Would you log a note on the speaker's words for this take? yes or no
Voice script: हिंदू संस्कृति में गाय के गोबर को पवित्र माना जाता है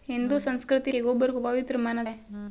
yes